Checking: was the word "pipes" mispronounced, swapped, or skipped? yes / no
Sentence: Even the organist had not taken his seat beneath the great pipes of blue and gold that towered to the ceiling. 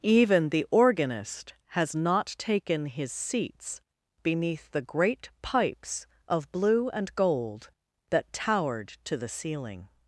no